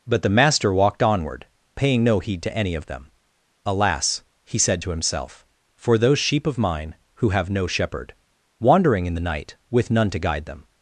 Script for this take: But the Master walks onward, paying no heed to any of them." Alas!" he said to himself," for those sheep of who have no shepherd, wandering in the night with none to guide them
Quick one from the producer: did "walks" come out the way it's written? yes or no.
no